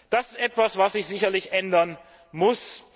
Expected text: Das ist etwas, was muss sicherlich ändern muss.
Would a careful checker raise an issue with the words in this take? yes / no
yes